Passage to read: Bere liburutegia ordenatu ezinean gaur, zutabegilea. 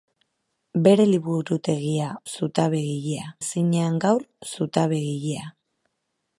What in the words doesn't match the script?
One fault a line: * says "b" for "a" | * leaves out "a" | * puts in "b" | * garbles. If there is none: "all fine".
* says "zutabegilea" for "ordenatu"